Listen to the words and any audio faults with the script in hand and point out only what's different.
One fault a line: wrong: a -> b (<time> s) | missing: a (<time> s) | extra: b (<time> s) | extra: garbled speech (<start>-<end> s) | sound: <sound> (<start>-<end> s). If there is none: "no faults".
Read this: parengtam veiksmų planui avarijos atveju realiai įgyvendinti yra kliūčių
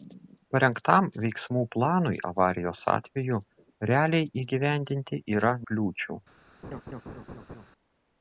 sound: laugh (6.6-7.7 s)